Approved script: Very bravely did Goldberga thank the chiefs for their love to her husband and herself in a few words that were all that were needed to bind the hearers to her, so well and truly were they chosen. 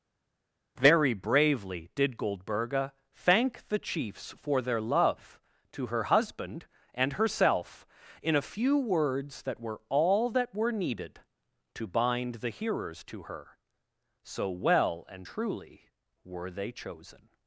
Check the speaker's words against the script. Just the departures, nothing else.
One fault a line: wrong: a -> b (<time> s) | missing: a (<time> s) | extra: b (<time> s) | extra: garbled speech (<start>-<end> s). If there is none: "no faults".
no faults